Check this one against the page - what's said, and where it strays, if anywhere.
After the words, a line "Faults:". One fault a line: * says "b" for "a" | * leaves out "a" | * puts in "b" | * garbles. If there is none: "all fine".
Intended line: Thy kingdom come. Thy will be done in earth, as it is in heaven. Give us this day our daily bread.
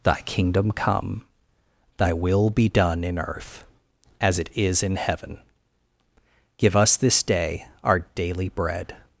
Thy kingdom come. Thy will be done in earth, as it is in heaven. Give us this day our daily bread.
Faults:
all fine